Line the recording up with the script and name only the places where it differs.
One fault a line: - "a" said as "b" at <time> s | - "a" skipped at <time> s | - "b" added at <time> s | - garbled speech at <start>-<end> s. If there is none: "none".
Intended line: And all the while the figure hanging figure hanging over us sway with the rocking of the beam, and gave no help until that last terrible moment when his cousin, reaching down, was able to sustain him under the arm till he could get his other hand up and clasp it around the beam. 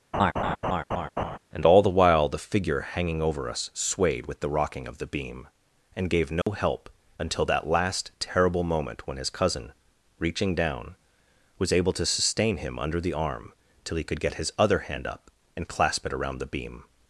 - "figure hanging" skipped at 3.2 s
- "sway" said as "swayed" at 3.7 s